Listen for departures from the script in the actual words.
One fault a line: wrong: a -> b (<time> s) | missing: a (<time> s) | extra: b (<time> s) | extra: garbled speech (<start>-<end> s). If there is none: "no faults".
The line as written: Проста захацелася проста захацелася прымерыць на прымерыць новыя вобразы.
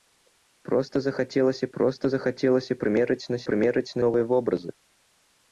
no faults